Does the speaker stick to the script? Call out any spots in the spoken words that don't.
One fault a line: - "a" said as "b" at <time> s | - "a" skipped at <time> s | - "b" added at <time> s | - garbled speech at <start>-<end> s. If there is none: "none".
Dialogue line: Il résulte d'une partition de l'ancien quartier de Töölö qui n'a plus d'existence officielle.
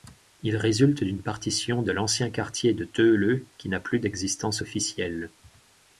none